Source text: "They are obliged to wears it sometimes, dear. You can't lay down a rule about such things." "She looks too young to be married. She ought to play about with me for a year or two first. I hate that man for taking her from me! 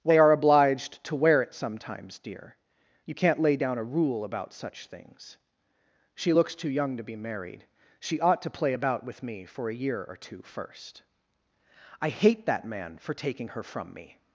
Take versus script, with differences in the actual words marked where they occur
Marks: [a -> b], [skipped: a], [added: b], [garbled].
"They are obliged to [wears -> wear] it sometimes, dear. You can't lay down a rule about such things." "She looks too young to be married. She ought to play about with me for a year or two first. I hate that man for taking her from me!